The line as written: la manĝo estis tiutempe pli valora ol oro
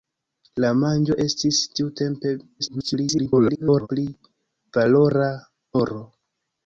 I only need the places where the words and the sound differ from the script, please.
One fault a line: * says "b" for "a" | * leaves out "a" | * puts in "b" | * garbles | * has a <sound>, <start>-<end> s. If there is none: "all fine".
* garbles
* leaves out "ol"